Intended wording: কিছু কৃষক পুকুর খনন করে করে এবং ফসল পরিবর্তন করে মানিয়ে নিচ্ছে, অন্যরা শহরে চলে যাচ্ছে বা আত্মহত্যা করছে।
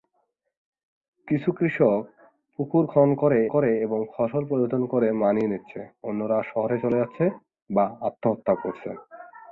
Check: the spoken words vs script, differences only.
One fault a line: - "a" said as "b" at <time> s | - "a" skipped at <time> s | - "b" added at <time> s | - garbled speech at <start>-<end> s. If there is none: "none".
none